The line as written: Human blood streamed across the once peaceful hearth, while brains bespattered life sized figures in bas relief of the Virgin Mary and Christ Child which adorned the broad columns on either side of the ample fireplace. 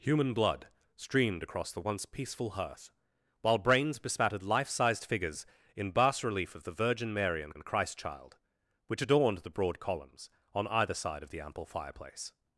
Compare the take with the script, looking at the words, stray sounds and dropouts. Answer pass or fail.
fail